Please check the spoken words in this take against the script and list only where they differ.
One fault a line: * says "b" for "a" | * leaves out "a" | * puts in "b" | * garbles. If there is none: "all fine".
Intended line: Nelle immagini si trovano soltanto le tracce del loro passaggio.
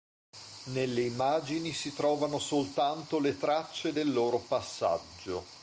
all fine